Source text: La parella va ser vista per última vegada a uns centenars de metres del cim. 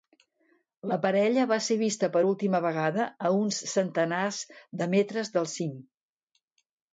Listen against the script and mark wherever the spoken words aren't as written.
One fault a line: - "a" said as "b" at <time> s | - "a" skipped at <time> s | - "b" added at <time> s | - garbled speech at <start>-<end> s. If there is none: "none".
none